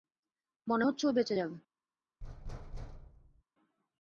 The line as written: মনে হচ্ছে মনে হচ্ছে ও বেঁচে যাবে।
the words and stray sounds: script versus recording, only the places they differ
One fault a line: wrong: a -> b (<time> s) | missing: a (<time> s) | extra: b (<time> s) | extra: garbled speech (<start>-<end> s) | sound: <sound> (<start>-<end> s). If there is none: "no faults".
missing: মনে হচ্ছে (1.0 s)
sound: thud (2.2-3.4 s)